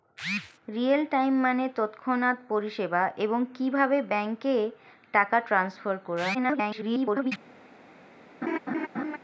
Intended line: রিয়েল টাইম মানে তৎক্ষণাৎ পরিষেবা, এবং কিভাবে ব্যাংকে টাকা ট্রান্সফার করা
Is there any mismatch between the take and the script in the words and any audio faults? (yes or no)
yes